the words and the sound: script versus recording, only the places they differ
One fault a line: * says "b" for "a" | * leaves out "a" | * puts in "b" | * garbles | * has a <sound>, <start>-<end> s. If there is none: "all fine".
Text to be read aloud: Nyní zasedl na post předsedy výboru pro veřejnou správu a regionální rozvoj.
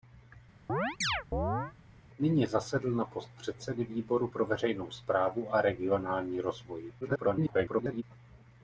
* has a chirp, 0.7-1.7 s
* garbles